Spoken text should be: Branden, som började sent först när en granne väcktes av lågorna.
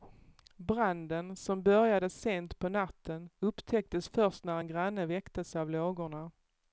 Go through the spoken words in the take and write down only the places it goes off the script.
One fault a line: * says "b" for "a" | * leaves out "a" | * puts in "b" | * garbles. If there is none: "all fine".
* puts in "på natten upptäcktes"